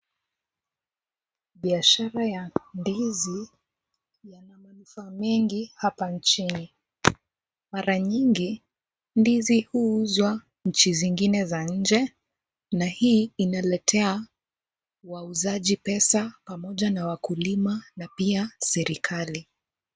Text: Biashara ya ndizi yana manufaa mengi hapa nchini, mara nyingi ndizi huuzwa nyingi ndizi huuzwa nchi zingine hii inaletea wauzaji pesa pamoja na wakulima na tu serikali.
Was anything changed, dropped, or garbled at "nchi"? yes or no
yes